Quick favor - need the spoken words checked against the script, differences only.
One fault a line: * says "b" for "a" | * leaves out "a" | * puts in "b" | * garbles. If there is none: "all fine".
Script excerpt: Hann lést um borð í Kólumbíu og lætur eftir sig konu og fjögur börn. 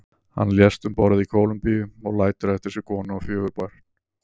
all fine